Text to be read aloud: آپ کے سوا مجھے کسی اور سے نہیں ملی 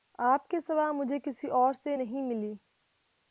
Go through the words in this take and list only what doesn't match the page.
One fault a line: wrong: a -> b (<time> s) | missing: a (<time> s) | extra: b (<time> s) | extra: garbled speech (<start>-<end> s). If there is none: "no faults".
no faults